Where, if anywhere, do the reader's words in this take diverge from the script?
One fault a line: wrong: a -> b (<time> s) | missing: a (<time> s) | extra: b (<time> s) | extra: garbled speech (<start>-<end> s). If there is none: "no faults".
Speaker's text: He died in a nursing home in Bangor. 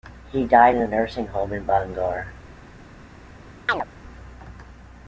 no faults